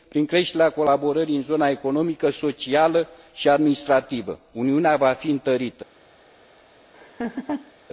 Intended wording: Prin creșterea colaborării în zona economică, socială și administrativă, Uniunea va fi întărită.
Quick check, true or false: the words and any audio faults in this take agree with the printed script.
false